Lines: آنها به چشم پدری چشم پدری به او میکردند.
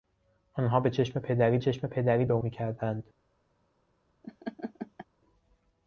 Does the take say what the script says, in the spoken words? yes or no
yes